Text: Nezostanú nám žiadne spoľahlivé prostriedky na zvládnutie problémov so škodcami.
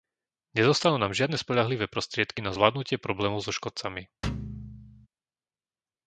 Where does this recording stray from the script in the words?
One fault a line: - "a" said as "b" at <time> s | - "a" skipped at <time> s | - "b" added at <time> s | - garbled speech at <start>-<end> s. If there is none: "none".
none